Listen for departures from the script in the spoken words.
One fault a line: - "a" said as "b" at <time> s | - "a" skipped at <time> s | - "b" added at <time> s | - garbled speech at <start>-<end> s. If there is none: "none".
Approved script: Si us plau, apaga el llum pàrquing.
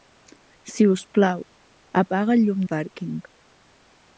none